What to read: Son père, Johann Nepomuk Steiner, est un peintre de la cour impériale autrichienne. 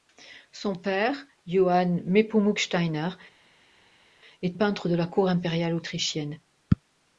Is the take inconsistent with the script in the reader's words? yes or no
yes